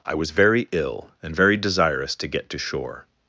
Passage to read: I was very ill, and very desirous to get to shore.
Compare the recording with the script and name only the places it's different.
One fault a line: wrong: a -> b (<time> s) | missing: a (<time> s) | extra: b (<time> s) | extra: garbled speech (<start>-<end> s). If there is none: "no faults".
no faults